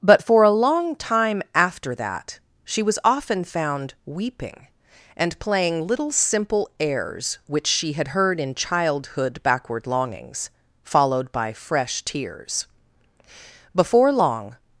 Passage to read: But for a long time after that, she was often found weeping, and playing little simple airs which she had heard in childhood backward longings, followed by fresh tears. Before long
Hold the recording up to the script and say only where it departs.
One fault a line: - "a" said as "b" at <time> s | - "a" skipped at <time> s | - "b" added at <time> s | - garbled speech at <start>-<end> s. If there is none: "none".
none